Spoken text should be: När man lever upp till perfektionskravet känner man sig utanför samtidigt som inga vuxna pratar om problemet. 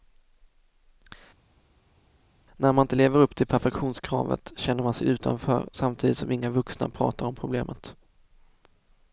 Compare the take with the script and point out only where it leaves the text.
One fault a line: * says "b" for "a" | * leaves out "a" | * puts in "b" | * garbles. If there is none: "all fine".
* puts in "inte"